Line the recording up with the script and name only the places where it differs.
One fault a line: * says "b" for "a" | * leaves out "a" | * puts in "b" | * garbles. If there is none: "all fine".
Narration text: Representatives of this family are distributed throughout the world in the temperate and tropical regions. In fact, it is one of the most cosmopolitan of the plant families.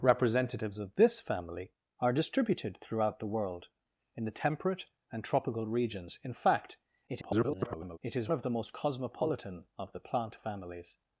* garbles
* leaves out "one"